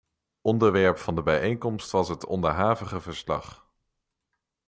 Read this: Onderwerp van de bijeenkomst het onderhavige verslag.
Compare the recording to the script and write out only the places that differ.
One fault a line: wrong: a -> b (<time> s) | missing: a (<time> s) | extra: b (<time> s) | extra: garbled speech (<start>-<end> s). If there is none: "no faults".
extra: was (1.9 s)